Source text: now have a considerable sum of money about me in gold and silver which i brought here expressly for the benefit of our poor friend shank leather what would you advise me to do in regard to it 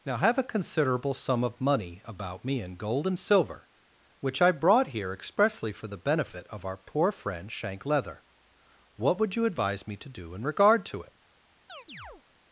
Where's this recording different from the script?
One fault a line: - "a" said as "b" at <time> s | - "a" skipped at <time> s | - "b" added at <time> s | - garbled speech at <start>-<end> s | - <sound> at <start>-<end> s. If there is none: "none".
- chirp at 11.7-12.2 s